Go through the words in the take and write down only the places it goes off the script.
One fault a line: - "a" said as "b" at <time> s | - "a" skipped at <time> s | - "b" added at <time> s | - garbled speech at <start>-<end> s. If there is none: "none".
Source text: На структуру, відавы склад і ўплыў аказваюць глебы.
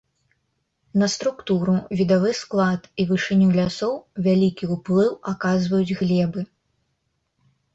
- "вышыню лясоў вялікі" added at 3.1 s